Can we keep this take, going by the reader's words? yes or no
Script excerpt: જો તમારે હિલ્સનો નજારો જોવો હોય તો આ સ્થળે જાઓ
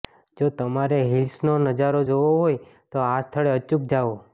no